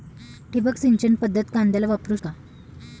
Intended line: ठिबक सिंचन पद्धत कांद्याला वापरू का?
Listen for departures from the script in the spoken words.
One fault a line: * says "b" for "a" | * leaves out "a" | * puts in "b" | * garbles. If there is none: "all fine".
all fine